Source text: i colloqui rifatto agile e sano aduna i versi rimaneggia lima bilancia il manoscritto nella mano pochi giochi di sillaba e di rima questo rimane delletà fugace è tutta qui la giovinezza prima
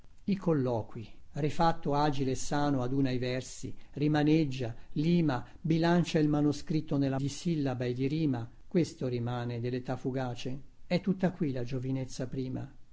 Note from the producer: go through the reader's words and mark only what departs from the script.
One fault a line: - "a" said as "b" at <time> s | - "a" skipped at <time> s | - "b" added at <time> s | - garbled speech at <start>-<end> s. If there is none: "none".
- "mano pochi giochi" skipped at 7.2 s